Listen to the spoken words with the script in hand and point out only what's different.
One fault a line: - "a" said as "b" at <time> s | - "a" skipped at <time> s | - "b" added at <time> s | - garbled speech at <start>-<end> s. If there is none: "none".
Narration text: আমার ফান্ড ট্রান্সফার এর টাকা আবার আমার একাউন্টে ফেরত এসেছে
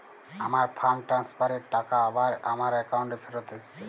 none